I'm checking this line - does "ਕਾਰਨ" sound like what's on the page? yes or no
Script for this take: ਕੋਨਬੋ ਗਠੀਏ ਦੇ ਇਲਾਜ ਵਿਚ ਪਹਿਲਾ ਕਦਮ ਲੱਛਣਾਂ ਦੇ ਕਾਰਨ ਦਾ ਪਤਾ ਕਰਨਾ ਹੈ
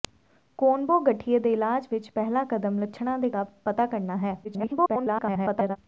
no